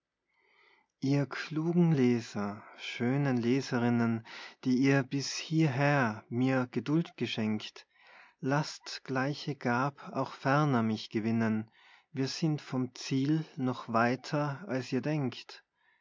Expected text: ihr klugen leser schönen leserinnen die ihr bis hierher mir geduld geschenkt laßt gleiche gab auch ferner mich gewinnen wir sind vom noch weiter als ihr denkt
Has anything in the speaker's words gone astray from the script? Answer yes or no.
yes